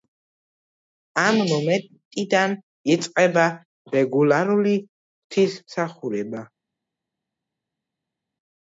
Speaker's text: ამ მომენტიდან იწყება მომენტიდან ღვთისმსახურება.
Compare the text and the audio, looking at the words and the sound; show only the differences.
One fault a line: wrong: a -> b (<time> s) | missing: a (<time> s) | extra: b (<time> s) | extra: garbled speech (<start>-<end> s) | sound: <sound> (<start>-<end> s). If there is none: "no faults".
wrong: მომენტიდან -> რეგულარული (4.0 s)